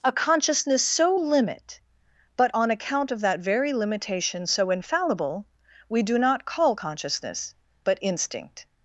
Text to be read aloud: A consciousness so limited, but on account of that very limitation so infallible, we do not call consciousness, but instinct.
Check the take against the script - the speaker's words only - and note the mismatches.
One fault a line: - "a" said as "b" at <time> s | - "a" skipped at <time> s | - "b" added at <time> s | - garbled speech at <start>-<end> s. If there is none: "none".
- "limited" said as "limit" at 1.1 s